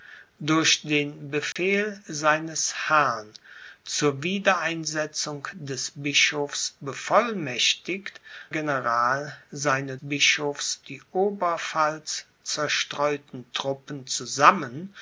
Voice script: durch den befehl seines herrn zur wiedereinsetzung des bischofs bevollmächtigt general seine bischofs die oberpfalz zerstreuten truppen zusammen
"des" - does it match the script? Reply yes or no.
yes